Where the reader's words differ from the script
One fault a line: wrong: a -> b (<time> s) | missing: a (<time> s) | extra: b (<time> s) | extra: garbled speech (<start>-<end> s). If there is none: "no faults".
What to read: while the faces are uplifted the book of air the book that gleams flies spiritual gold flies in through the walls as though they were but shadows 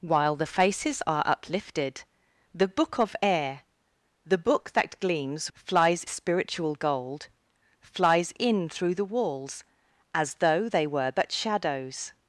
no faults